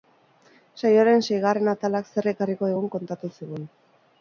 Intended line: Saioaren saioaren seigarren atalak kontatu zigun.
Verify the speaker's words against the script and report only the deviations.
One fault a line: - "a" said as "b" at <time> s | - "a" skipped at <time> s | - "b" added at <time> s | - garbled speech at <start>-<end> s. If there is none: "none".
- "saioaren" skipped at 1.2 s
- "zer ekarriko digun" added at 2.1 s